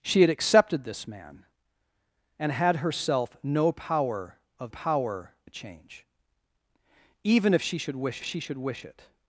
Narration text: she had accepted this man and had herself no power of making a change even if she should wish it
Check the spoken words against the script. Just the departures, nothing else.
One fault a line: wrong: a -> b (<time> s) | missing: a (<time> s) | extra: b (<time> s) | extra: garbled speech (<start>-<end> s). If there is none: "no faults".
wrong: making -> power (4.7 s)
extra: she should wish (8.2 s)